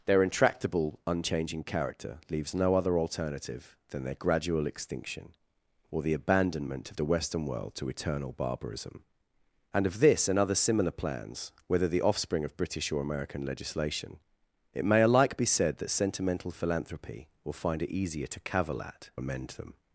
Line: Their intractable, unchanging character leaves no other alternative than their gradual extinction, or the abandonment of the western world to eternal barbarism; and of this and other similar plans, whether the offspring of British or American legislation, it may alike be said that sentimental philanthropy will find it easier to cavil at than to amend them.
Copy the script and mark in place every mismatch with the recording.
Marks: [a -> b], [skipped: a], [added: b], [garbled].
Their intractable, unchanging character leaves no other alternative than their gradual extinction, or the abandonment of the western world to eternal barbarism; and of this and other similar plans, whether the offspring of British or American legislation, it may alike be said that sentimental philanthropy will find it easier to cavil at [skipped: than to] amend them.